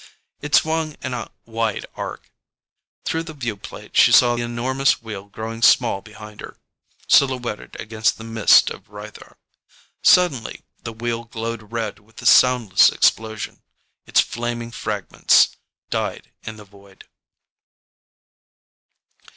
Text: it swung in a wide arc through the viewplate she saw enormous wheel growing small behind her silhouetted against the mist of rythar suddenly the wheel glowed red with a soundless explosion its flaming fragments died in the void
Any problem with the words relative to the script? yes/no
no